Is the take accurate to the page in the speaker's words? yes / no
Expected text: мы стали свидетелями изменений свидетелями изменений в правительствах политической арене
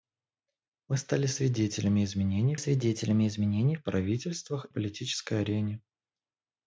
yes